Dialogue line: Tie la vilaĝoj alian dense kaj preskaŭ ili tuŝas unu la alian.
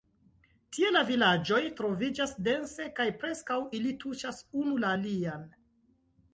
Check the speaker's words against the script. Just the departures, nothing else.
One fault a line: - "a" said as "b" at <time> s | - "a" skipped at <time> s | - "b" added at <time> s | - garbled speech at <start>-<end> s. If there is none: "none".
- "alian" said as "troviĝas" at 1.8 s